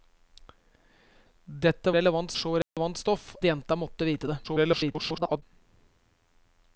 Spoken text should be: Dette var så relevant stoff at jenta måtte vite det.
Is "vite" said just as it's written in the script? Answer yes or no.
yes